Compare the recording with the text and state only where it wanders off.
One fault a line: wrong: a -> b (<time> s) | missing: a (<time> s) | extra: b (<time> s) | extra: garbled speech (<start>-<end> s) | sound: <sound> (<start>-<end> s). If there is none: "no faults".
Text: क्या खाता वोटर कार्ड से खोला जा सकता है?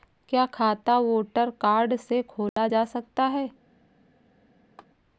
sound: dropout (2.5-2.6 s)
sound: laugh (4.8-4.9 s)